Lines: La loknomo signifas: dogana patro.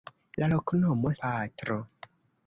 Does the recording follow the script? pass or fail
fail